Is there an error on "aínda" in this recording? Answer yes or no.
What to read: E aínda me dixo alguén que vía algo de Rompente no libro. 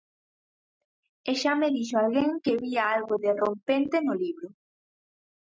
yes